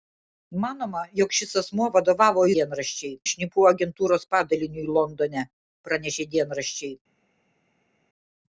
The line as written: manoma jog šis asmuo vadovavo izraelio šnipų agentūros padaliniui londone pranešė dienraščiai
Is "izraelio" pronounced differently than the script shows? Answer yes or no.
yes